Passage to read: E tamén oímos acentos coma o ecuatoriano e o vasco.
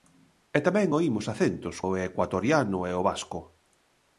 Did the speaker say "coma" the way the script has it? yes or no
no